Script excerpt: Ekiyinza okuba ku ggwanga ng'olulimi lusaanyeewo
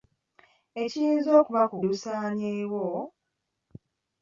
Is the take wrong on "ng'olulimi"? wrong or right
wrong